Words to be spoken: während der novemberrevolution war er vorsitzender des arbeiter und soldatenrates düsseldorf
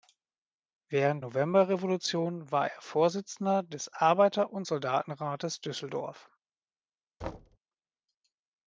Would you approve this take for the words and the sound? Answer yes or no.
no